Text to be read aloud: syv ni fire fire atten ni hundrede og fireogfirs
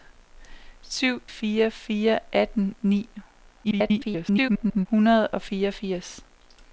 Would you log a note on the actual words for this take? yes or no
yes